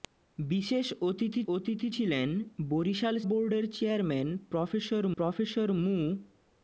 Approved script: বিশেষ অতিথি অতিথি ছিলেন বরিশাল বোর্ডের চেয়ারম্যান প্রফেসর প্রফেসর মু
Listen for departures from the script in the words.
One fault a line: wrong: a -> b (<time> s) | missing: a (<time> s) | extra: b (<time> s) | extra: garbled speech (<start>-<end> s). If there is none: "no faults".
no faults